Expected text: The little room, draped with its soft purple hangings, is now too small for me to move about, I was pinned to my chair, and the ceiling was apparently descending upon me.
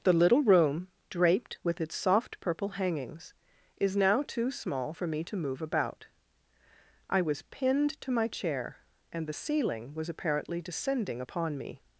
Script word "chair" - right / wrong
right